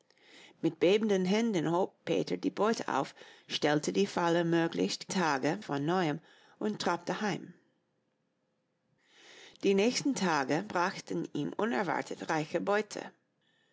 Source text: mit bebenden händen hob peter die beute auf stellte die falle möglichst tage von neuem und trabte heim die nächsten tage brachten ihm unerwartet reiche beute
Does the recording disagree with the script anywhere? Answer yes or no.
no